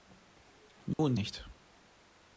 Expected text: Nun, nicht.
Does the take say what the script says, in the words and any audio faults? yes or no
no